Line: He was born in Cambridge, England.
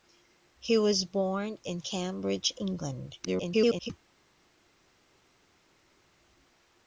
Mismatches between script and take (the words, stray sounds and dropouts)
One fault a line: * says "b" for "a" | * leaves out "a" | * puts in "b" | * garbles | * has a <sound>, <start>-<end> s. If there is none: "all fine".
* garbles